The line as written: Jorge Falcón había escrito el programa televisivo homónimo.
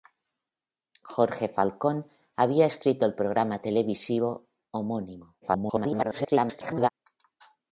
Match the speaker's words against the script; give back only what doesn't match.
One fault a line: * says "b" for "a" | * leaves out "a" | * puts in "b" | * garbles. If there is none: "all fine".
* garbles